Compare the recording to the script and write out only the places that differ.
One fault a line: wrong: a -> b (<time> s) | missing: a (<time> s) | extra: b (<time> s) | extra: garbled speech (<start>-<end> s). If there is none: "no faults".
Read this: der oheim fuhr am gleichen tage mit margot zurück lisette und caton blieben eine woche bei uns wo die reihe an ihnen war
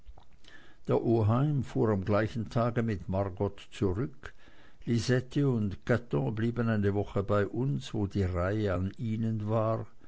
no faults